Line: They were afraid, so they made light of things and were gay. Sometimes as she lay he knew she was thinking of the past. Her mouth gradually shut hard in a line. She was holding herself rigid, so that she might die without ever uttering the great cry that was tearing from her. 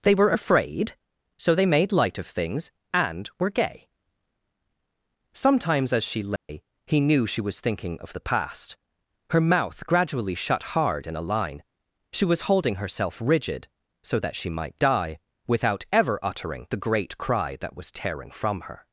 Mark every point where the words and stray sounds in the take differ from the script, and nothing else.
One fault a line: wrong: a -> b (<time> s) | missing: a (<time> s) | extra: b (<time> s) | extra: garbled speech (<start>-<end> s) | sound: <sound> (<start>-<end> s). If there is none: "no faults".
sound: dropout (6.4-6.5 s)